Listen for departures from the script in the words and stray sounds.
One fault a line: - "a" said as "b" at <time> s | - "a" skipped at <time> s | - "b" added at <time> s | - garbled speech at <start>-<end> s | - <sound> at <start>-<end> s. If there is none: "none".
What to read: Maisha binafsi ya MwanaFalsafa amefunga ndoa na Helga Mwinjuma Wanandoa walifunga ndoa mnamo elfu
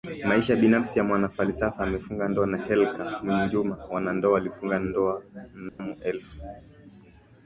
- dropout at 5.7-5.8 s